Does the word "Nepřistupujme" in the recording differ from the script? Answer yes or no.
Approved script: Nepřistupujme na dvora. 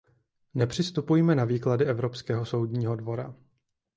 no